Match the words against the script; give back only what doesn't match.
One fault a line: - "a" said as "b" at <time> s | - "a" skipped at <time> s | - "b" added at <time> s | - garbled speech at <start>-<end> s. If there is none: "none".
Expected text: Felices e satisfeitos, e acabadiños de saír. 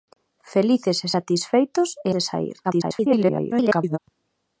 - "acabadiños" skipped at 2.1 s
- garbled speech at 2.6-4.0 s